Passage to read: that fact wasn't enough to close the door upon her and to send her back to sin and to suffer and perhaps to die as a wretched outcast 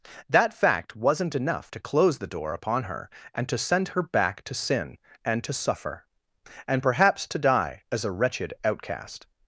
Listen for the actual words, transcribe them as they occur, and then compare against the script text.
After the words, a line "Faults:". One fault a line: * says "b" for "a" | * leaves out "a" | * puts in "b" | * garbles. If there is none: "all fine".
that fact wasn't enough to close the door upon her and to send her back to sin and to suffer and perhaps to die as a wretched outcast
Faults:
all fine